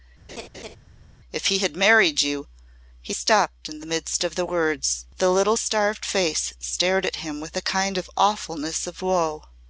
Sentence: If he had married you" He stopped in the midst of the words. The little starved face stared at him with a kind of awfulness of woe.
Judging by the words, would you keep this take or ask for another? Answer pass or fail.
pass